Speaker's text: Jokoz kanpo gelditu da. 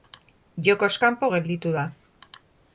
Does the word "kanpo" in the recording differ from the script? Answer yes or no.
no